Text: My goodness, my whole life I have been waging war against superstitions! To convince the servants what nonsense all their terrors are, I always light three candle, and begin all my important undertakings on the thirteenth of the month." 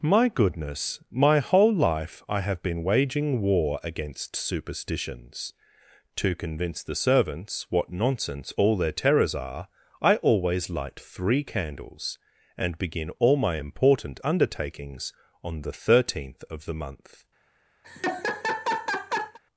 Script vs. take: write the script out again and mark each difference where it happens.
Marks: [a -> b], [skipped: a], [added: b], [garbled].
My goodness, my whole life I have been waging war against superstitions! To convince the servants what nonsense all their terrors are, I always light three [candle, -> candles] and begin all my important undertakings on the thirteenth of the month."